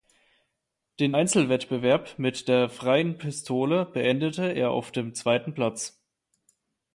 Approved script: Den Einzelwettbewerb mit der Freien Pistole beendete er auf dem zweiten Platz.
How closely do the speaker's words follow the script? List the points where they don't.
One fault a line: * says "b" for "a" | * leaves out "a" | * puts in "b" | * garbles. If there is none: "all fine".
all fine